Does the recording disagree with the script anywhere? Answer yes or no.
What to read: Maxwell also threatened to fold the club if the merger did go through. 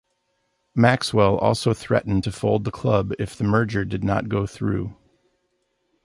yes